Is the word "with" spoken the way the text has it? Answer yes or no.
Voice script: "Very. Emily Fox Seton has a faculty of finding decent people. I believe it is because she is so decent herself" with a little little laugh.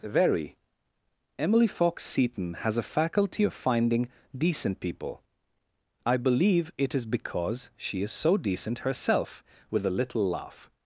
yes